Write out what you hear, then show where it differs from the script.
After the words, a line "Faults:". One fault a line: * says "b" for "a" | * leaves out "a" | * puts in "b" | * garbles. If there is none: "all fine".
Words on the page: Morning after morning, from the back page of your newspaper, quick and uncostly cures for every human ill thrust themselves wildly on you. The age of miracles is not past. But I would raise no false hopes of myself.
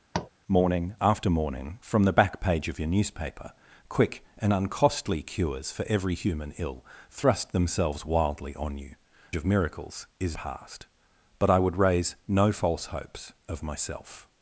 Morning after morning, from the back page of your newspaper, quick and uncostly cures for every human ill thrust themselves wildly on you. Of miracles is past. But I would raise no false hopes of myself.
Faults:
* leaves out "The age"
* leaves out "not"